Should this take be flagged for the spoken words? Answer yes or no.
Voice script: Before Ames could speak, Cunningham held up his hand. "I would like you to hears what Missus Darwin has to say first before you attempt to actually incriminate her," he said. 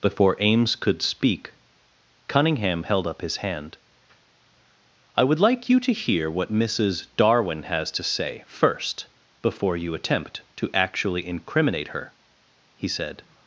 yes